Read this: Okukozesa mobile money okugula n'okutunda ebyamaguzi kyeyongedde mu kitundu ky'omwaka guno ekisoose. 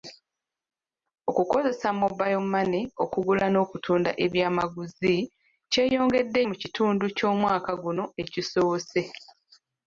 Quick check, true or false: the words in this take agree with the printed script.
true